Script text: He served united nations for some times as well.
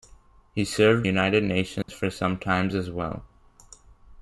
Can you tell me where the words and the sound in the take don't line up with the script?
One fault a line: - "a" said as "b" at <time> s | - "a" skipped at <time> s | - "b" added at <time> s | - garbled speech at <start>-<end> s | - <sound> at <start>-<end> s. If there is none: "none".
- dropout at 1.8-1.9 s